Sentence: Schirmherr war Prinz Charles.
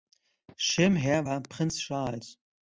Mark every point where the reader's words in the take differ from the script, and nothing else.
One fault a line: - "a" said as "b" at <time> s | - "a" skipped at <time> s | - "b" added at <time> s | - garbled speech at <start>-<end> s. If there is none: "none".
none